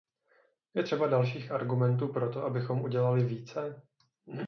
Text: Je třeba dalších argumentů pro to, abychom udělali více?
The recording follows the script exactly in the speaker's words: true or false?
true